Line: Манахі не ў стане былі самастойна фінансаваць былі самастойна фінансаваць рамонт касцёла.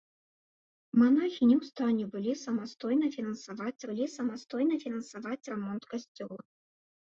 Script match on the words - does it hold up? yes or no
yes